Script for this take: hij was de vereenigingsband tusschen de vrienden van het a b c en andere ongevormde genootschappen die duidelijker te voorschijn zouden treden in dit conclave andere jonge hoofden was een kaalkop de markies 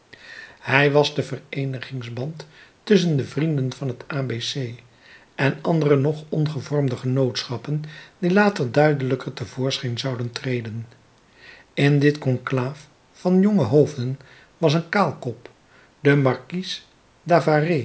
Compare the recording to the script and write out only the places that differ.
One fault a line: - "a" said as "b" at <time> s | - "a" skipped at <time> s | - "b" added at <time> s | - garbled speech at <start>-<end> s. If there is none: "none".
- "nog" added at 6.0 s
- "later" added at 8.3 s
- "andere" said as "van" at 13.1 s